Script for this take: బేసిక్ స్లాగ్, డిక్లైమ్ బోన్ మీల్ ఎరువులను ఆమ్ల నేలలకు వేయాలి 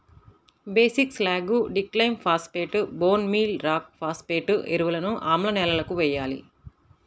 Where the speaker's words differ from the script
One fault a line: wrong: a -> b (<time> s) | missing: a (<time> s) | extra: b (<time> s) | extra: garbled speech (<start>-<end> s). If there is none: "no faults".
extra: ఫాస్ఫేట్ (2.2 s)
extra: రాక్ ఫాస్ఫేట్ (3.6 s)